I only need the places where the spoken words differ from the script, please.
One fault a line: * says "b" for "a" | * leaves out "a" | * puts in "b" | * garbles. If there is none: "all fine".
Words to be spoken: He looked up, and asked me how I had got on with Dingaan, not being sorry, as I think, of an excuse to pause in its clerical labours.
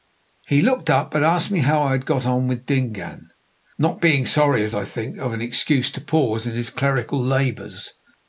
* says "his" for "its"